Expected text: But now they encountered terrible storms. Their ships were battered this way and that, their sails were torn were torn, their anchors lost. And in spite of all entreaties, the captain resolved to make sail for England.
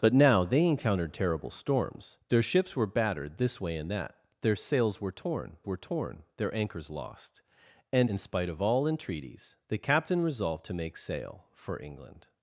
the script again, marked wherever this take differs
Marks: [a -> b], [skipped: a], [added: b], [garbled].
But now they encountered terrible storms. Their ships were battered this way and that, their sails were torn were torn, their anchors lost. And in spite of all entreaties, the captain resolved to make sail for England.